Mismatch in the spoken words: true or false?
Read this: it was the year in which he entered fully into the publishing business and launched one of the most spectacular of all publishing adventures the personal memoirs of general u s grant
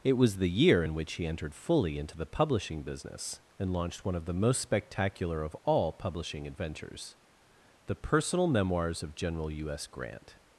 false